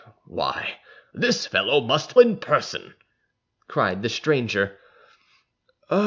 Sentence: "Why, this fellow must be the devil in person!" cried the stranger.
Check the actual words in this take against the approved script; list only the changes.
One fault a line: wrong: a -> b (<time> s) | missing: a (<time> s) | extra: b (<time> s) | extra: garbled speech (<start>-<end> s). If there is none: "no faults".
missing: be the devil (2.1 s)